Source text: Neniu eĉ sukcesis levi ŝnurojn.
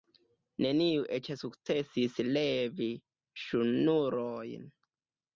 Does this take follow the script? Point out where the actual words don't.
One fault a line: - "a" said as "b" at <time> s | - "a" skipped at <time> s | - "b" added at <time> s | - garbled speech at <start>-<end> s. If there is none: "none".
none